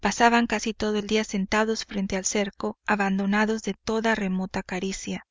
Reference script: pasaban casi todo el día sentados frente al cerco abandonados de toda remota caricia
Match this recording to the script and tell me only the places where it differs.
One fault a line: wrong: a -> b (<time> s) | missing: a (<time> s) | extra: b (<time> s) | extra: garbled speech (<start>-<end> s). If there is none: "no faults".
no faults